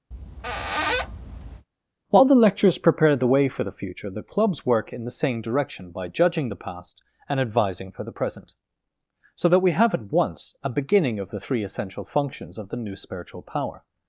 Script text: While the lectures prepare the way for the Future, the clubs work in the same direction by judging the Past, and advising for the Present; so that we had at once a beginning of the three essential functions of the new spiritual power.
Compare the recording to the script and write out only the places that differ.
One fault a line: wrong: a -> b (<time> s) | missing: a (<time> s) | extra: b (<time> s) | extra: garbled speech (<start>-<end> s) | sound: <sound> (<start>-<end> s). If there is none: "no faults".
sound: squeak (0.1-1.7 s)
wrong: had -> have (9.7 s)